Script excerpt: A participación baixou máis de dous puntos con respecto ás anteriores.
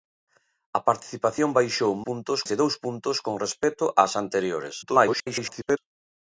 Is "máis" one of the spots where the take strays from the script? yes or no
yes